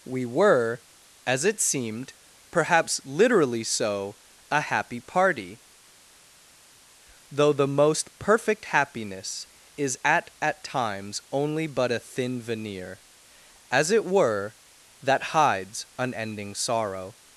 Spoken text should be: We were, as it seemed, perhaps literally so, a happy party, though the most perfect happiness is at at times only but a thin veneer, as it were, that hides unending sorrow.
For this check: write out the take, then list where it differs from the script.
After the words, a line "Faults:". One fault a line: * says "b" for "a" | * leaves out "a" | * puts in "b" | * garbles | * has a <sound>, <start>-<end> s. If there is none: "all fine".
We were, as it seemed, perhaps literally so, a happy party, though the most perfect happiness is at at times only but a thin veneer, as it were, that hides unending sorrow.
Faults:
all fine